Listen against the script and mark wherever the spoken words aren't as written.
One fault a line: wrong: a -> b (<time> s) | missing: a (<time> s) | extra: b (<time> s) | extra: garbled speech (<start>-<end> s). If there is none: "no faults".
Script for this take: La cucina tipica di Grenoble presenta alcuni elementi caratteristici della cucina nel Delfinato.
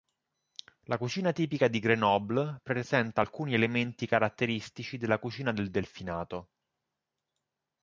wrong: nel -> del (5.5 s)